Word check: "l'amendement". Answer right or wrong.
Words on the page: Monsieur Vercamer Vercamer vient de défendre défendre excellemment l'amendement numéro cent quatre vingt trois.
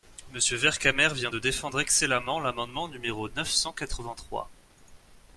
right